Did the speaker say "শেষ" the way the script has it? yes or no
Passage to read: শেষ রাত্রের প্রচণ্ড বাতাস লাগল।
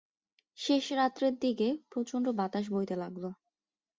yes